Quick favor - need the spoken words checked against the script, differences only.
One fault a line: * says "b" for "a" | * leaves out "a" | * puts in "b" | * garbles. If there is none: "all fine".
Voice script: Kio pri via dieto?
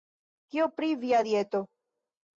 all fine